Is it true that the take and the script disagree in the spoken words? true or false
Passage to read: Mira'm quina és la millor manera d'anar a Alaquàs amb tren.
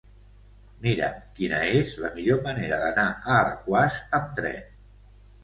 false